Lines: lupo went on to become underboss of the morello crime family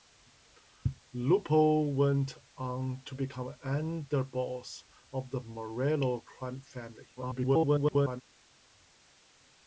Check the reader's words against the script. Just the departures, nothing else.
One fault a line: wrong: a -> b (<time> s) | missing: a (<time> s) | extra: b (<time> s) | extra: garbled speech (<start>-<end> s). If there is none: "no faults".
extra: garbled speech (7.2-8.2 s)